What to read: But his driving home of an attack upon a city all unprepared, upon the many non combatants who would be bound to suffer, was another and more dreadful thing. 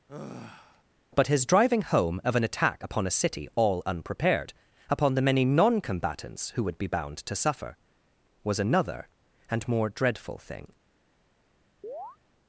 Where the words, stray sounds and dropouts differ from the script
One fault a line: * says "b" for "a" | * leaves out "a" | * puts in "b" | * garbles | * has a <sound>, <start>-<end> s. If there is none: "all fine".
* has a sigh, 0.1-0.8 s
* has a chirp, 11.8-12.2 s